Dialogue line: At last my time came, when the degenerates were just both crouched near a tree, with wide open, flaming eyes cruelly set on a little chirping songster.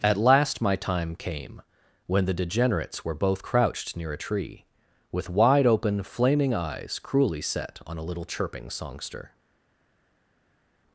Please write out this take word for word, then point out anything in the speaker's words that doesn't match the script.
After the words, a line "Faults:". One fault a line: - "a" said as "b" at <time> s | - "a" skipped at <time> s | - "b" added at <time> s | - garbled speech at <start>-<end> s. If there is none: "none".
At last my time came, when the degenerates were both crouched near a tree, with wide open, flaming eyes cruelly set on a little chirping songster.
Faults:
- "just" skipped at 3.1 s